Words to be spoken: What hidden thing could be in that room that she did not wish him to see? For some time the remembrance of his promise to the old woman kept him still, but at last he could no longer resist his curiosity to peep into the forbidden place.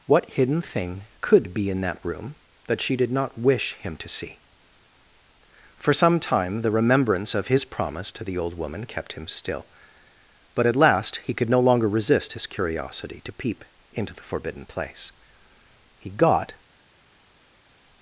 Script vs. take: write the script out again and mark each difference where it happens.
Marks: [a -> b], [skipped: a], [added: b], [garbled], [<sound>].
What hidden thing could be in that room that she did not wish him to see? For some time the remembrance of his promise to the old woman kept him still, but at last he could no longer resist his curiosity to peep into the forbidden place. [added: He got]